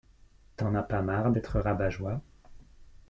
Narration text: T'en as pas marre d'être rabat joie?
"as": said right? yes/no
yes